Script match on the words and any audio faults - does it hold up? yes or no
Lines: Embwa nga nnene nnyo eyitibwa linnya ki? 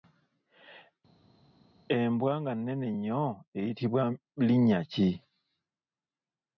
yes